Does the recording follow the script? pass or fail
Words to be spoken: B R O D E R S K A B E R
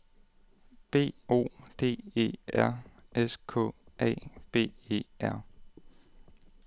fail